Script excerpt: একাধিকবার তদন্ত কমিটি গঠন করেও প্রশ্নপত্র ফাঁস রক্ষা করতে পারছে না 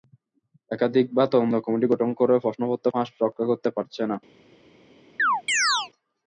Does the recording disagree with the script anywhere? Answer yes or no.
no